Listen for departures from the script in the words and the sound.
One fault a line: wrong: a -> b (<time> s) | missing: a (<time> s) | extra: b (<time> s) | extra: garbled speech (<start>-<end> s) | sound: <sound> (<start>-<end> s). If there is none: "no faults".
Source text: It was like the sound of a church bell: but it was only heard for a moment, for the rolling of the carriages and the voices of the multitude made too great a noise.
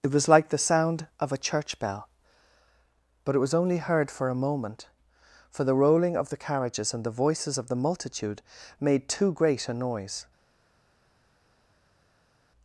no faults